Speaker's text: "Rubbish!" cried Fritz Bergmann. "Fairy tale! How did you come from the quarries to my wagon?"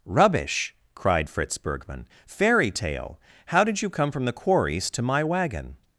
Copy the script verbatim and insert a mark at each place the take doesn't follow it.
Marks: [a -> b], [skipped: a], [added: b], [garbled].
"Rubbish!" cried Fritz Bergmann. "Fairy tale! How did you come from the quarries to my wagon?"